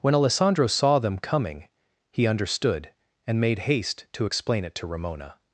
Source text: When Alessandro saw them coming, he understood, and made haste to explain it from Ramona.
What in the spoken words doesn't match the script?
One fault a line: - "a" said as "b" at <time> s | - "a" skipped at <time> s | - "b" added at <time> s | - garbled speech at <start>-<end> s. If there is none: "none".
- "from" said as "to" at 4.8 s